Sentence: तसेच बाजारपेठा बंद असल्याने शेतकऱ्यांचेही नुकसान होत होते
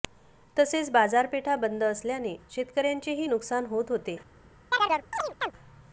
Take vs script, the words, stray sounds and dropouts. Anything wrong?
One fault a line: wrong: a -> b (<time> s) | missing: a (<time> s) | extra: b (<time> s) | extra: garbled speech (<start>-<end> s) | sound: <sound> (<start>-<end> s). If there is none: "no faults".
sound: chirp (4.7-5.5 s)